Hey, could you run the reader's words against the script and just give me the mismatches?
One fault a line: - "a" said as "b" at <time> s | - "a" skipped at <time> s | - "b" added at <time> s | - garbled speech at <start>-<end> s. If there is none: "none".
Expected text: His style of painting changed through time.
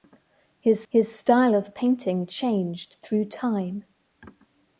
- "his" added at 0.9 s